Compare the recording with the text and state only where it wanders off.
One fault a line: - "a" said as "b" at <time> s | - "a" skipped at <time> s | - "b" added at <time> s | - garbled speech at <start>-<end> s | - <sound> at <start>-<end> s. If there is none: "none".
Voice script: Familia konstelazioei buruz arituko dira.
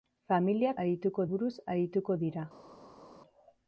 - "konstelazioei" said as "arituko" at 0.8 s